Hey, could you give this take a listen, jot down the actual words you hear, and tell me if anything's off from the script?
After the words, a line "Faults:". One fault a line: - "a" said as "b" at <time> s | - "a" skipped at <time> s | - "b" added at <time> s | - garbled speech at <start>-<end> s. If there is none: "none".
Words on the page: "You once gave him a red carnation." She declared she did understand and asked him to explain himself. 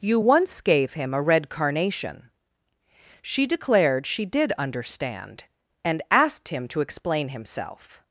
"You once gave him a red carnation." She declared she did understand and asked him to explain himself.
Faults:
none